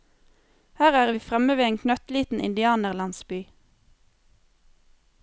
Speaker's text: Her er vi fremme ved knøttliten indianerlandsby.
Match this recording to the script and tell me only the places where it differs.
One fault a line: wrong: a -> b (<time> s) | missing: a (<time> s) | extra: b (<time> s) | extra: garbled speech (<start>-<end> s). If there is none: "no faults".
extra: en (1.6 s)